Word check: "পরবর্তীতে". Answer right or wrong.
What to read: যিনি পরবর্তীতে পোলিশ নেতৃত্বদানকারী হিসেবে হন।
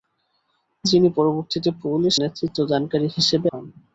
right